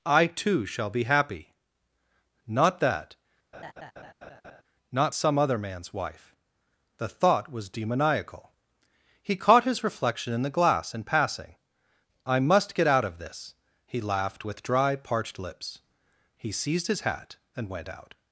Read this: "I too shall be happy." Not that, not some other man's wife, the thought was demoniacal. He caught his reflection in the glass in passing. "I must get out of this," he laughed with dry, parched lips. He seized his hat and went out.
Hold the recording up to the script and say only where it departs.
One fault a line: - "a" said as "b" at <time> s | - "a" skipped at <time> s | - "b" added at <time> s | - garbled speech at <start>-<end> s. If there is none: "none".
none